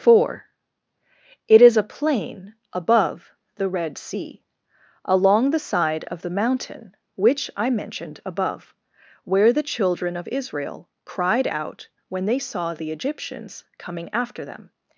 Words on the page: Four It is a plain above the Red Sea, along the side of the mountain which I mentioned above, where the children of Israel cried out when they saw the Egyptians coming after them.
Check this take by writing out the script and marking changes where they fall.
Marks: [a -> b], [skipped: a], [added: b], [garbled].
Four It is a plain above the Red Sea, along the side of the mountain which I mentioned above, where the children of Israel cried out when they saw the Egyptians coming after them.